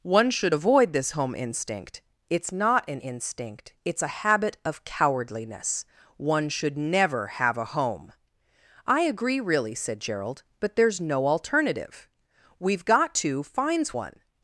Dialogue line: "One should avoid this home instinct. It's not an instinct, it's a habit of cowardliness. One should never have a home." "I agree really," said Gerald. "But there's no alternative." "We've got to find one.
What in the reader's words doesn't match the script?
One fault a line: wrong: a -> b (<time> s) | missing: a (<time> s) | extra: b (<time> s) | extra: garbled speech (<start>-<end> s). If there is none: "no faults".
wrong: find -> finds (13.4 s)